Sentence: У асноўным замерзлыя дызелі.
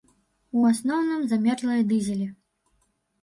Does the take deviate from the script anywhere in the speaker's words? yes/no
no